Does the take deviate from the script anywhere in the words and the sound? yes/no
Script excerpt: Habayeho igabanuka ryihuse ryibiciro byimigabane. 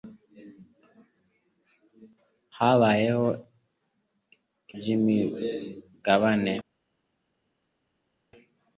yes